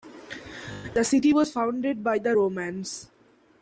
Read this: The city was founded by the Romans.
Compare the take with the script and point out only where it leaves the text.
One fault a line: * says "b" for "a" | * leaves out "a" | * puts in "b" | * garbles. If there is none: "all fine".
all fine